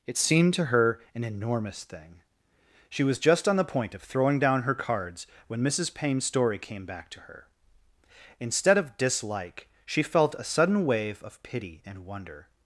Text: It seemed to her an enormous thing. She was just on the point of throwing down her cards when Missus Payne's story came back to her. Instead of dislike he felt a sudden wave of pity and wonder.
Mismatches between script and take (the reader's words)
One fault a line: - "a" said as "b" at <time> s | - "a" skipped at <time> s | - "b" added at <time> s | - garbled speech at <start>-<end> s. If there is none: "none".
- "he" said as "she" at 9.8 s